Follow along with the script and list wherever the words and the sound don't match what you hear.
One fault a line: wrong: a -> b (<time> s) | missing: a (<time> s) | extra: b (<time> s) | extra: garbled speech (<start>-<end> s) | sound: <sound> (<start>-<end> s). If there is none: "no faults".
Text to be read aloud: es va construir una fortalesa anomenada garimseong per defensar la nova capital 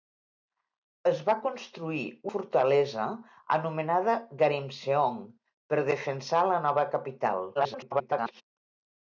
missing: una (2.0 s)
extra: garbled speech (7.5-8.4 s)